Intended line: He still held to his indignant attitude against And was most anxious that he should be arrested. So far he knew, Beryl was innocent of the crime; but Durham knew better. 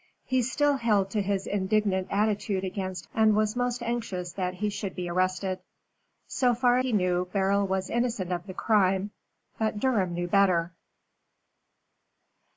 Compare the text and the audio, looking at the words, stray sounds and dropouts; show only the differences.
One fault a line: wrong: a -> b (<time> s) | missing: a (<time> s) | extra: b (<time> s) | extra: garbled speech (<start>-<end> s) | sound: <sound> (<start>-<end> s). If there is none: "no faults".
no faults